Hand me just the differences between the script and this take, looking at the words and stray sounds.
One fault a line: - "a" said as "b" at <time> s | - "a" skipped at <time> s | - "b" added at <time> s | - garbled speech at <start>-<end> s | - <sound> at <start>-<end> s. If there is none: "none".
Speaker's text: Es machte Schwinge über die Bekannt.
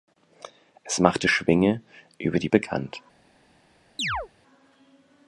- chirp at 4.0-4.3 s